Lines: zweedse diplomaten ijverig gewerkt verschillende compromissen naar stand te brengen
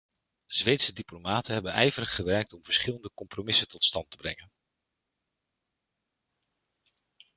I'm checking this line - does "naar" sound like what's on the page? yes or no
no